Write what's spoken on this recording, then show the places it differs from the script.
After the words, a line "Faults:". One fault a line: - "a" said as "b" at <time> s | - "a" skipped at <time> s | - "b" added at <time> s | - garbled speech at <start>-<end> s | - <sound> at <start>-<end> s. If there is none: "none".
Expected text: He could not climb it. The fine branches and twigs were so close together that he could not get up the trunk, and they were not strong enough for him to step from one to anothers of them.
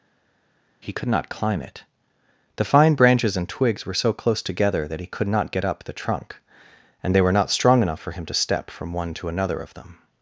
He could not climb it. The fine branches and twigs were so close together that he could not get up the trunk, and they were not strong enough for him to step from one to another of them.
Faults:
- "anothers" said as "another" at 9.3 s